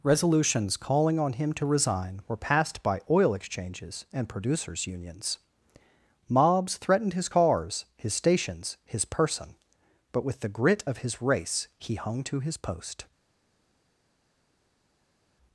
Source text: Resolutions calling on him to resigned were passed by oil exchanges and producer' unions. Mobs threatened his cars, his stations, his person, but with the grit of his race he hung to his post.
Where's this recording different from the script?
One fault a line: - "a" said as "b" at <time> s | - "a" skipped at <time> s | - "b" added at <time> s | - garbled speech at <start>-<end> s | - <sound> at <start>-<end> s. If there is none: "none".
- "resigned" said as "resign" at 1.6 s
- "producer" said as "producers" at 4.3 s